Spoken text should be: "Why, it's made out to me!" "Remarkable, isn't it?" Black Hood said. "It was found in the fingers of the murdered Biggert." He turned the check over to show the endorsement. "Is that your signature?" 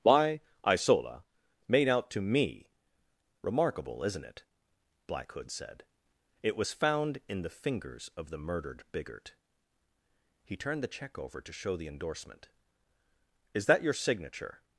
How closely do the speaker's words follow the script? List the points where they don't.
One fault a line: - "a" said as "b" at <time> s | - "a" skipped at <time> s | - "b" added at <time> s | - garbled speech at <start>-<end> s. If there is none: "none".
- "it's" said as "isola" at 0.6 s